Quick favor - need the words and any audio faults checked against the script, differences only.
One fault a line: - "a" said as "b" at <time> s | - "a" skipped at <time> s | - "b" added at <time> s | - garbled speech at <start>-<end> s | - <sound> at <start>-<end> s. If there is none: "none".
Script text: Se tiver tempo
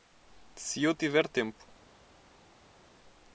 - "eu" added at 0.8 s